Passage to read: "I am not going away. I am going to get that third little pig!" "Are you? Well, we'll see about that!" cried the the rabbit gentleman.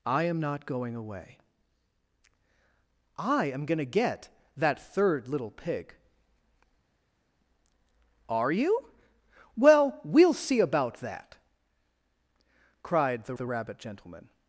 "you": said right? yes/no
yes